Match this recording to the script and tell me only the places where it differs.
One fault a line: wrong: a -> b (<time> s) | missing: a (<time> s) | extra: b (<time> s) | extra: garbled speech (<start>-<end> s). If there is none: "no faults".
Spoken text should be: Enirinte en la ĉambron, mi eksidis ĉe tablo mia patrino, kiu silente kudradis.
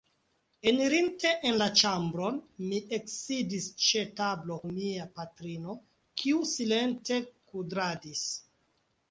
no faults